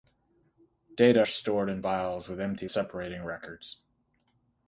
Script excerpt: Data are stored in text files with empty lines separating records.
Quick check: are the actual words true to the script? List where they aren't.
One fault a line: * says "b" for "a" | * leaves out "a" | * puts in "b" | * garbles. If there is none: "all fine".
* leaves out "are"
* leaves out "text"
* leaves out "lines"